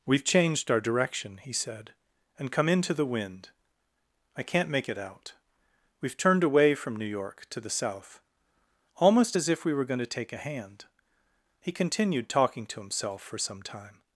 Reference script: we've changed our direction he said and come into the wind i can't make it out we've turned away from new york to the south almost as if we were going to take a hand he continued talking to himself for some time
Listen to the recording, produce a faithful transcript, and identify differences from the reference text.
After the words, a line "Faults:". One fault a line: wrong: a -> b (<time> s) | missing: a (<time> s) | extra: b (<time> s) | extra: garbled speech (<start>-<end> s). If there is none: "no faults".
we've changed our direction he said and come into the wind i can't make it out we've turned away from new york to the south almost as if we were going to take a hand he continued talking to himself for some time
Faults:
no faults